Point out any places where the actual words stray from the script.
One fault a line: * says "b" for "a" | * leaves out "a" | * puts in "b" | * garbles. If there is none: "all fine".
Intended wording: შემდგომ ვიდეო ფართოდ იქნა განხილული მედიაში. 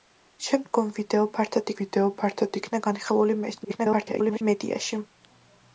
* puts in "ვიდეო ფართოდ"
* garbles